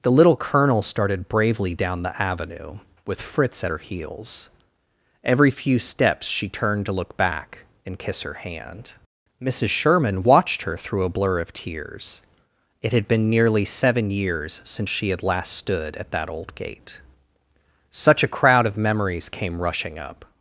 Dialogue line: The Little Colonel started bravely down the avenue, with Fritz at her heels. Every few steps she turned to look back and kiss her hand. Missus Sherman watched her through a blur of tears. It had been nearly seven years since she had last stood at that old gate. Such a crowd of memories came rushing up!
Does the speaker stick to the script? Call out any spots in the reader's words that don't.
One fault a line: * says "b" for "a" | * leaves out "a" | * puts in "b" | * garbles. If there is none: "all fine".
all fine